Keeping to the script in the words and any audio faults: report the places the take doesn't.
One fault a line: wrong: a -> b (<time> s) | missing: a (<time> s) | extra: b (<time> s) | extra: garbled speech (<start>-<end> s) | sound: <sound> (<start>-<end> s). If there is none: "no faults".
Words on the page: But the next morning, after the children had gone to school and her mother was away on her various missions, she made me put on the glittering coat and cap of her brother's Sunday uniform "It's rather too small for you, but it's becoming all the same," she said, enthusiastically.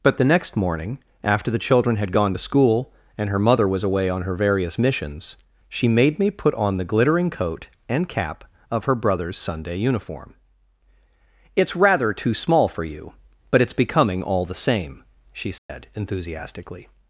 sound: dropout (15.6-15.7 s)